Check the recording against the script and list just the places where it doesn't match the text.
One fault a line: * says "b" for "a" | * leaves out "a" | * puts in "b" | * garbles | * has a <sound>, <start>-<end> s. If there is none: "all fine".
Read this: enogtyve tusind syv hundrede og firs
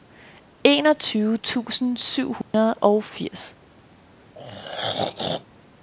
* has a dropout, 2.4-2.5 s
* has a throat clearing, 4.3-5.5 s